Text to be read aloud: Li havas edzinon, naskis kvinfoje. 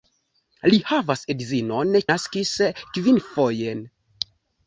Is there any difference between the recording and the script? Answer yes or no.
no